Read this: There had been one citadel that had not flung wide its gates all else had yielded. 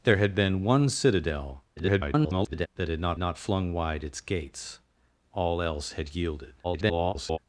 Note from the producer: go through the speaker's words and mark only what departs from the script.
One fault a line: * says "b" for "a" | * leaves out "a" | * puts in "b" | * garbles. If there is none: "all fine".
* garbles
* puts in "not"
* garbles